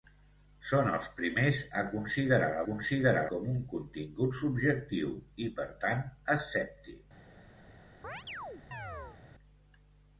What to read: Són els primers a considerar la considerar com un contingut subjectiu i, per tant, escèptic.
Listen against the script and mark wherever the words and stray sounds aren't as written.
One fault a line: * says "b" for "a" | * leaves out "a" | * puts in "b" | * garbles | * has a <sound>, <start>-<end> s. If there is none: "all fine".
* has a chirp, 8.0-9.2 s